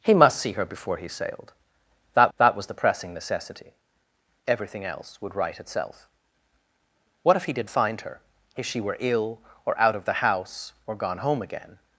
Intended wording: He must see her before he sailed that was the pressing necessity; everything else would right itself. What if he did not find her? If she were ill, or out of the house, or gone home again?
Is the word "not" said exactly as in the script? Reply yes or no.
no